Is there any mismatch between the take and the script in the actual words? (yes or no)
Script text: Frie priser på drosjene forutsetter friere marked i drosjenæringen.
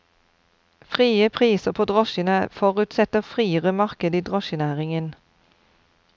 no